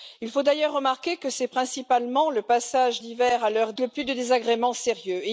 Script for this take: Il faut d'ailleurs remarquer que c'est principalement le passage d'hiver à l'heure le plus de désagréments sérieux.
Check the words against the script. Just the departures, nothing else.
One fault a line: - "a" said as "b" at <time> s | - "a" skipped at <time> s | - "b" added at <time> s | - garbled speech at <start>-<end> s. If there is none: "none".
none